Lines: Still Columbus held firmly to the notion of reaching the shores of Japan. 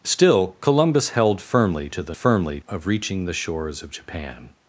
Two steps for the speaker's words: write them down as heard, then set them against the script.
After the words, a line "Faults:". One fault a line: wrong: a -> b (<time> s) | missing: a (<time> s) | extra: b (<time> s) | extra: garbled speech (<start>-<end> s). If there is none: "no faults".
Still Columbus held firmly to the firmly of reaching the shores of Japan.
Faults:
wrong: notion -> firmly (2.1 s)